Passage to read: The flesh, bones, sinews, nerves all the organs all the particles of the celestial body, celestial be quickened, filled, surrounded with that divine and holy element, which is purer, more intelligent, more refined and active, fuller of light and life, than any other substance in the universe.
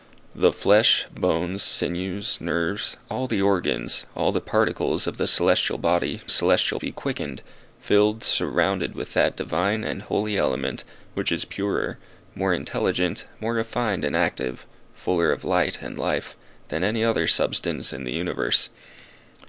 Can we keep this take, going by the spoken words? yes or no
yes